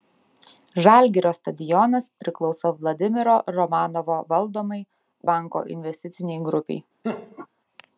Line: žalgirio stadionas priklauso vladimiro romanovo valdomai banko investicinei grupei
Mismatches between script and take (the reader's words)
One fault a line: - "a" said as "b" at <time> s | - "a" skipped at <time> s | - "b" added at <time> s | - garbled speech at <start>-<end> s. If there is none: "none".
none